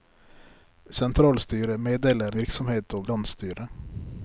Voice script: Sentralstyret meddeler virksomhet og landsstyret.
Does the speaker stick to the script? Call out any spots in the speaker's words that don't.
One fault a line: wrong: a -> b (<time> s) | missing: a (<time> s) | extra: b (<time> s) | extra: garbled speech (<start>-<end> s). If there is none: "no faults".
no faults